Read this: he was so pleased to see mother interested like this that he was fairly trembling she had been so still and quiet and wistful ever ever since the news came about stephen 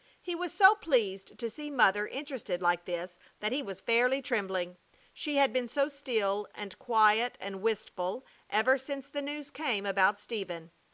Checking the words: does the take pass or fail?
fail